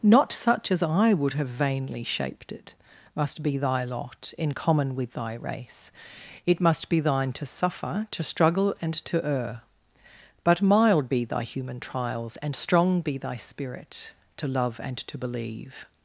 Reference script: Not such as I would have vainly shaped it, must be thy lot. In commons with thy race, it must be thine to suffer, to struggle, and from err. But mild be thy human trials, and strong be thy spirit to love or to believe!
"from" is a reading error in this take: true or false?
true